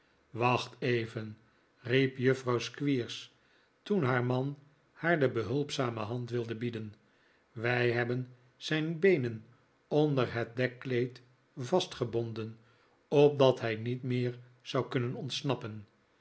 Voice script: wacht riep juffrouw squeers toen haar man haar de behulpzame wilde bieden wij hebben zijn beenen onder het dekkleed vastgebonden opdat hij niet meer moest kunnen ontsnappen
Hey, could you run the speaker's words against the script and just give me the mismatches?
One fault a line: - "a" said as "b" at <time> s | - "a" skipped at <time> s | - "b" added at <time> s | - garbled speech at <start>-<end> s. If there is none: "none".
- "even" added at 0.8 s
- "hand" added at 6.0 s
- "moest" said as "zou" at 14.6 s